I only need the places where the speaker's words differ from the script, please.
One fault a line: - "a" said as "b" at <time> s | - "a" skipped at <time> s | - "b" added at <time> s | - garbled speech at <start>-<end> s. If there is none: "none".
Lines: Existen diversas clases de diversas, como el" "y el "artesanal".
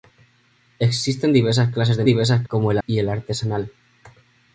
none